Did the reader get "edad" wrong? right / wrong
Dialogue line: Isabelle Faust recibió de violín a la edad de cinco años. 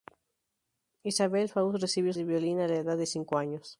right